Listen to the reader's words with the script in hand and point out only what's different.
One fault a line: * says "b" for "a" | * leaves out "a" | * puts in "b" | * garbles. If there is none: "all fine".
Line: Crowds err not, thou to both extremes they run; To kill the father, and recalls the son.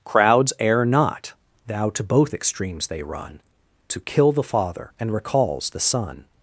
all fine